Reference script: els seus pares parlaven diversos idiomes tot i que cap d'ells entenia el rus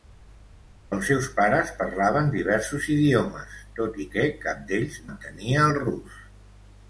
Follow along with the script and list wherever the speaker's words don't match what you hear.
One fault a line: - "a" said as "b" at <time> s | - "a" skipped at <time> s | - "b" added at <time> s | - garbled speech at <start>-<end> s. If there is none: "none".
none